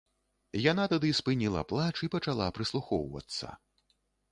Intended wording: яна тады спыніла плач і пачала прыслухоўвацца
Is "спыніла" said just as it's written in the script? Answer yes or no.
yes